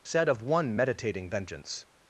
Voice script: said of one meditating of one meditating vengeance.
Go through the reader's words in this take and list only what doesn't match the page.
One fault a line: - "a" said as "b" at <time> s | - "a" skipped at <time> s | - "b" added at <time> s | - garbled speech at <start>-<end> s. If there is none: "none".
- "of one meditating" skipped at 1.3 s